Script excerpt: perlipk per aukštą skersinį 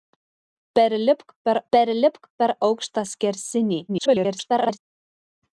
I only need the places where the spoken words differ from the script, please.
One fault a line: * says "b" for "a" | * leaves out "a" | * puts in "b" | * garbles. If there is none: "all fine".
* puts in "perlipk per"
* garbles